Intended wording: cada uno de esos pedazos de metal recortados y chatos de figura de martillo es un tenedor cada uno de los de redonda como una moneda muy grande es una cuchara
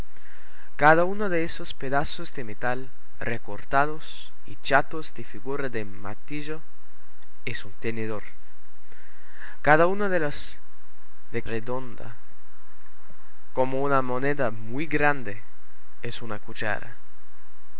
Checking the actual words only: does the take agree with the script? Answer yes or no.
yes